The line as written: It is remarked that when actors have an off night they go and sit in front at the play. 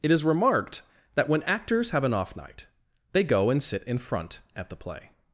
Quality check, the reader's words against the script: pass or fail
pass